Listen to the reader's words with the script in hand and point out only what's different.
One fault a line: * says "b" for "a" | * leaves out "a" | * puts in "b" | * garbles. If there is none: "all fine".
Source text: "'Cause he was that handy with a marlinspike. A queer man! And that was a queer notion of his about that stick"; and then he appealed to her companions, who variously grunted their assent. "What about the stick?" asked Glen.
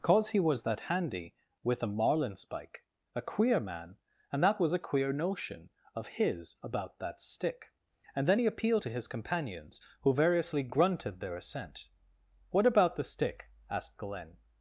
* says "his" for "her"